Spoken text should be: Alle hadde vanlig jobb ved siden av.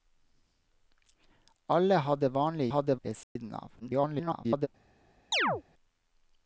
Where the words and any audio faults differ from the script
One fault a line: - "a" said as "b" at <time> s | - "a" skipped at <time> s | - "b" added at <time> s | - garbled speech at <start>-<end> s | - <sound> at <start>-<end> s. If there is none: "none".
- "jobb" said as "hadde" at 2.7 s
- dropout at 3.2-3.4 s
- garbled speech at 3.8-4.7 s
- chirp at 5.3-5.6 s